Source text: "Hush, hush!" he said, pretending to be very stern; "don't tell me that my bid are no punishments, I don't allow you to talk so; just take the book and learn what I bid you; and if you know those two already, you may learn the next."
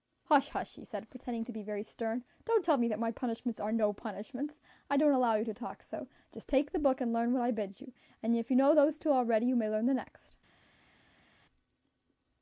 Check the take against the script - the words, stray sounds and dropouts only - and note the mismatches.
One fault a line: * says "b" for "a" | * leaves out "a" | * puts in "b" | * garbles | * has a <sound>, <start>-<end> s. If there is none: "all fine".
* says "punishments" for "bid"